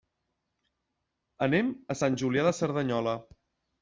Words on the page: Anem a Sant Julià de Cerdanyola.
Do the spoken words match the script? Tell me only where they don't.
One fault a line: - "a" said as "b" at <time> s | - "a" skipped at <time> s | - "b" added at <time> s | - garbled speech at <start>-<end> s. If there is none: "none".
none